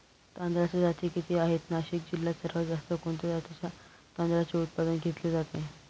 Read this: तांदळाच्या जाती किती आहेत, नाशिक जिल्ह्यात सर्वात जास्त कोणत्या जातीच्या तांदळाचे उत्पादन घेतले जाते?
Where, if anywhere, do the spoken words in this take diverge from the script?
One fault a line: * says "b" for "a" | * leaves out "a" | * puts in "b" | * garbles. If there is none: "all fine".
all fine